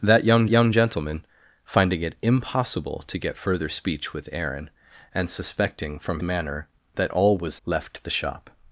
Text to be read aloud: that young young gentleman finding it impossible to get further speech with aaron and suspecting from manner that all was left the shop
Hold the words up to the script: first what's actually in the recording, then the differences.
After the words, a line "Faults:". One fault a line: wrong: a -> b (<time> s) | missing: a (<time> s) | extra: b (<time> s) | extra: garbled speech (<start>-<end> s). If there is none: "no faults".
that young young gentleman finding it impossible to get further speech with aaron and suspecting from manner that all was left the shop
Faults:
no faults